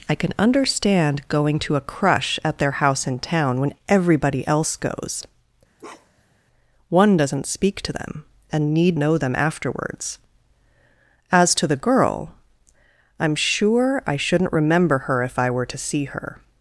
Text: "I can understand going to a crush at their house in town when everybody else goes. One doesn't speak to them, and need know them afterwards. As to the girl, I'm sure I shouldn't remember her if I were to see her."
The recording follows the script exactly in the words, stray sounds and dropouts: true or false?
false